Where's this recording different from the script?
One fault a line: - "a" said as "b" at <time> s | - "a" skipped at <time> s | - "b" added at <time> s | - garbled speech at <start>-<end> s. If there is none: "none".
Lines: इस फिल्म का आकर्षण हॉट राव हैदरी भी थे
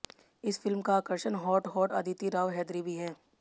- "हॉट अदिति" added at 1.7 s
- "थे" said as "हैं" at 2.9 s